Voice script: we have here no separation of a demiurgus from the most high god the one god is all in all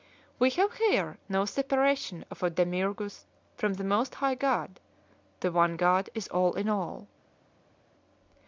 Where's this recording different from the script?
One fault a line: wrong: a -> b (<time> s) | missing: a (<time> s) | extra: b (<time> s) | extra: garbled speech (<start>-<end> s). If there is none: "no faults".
no faults